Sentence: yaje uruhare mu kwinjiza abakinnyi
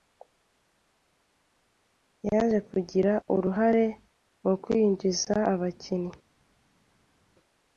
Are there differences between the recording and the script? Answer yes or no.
yes